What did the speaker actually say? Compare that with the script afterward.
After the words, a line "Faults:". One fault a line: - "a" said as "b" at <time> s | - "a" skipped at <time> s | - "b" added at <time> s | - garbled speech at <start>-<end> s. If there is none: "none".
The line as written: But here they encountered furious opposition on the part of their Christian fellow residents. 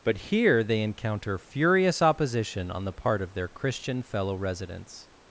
But here they encounter furious opposition on the part of their Christian fellow residents.
Faults:
- "encountered" said as "encounter" at 0.8 s